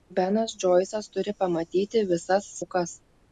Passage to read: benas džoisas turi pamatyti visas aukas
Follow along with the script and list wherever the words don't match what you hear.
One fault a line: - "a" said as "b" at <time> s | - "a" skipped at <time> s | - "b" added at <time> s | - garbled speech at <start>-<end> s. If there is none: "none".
none